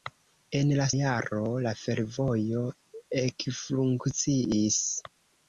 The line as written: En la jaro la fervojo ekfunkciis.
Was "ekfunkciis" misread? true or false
false